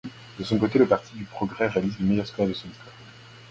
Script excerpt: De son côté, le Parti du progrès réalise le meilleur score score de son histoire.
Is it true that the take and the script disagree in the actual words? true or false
true